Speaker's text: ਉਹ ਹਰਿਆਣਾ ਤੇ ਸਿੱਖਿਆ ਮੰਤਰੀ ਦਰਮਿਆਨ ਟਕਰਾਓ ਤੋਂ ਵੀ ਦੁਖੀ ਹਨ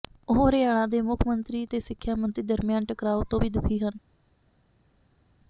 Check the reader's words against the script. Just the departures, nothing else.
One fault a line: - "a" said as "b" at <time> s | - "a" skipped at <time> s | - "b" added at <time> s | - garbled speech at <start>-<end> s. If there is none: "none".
- "ਦੇ ਮੁੱਖ ਮੰਤਰੀ" added at 0.9 s